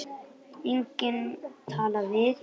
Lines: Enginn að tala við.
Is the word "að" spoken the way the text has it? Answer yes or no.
no